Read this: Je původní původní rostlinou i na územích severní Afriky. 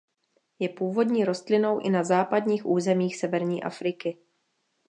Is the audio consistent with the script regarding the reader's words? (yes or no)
no